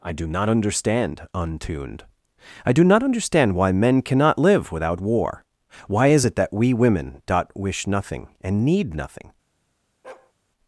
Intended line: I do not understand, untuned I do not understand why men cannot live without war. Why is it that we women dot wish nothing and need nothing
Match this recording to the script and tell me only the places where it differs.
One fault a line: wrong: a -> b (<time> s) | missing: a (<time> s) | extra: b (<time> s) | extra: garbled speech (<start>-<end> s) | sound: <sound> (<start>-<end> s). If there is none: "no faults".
sound: bark (10.0-10.3 s)